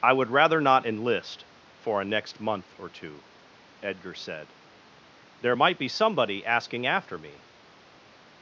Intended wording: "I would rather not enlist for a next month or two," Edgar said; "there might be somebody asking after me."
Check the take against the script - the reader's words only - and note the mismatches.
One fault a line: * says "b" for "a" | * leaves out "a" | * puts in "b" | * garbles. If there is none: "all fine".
all fine